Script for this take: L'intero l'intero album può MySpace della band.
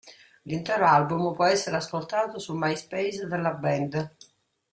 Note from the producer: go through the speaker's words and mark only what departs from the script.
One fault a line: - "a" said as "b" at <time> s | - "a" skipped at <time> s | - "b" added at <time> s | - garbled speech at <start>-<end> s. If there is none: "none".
- "l'intero" skipped at 0.9 s
- "essere ascoltato sul" added at 1.4 s